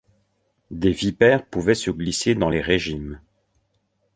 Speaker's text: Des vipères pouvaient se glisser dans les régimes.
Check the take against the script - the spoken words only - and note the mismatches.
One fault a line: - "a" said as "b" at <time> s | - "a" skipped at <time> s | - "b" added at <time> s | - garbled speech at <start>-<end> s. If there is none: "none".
none